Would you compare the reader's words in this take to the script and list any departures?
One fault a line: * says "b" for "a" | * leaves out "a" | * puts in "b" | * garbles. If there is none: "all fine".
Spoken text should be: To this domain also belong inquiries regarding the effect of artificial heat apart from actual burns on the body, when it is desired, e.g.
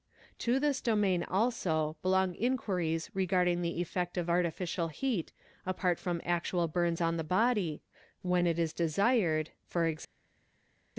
all fine